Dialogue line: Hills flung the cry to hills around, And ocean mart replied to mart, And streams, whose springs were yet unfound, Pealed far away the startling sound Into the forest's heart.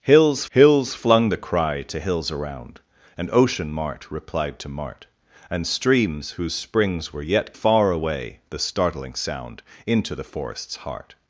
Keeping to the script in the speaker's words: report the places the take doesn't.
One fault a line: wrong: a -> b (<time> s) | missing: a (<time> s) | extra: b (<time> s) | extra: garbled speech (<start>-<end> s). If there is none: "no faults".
extra: hills (0.5 s)
missing: unfound Pealed (7.5 s)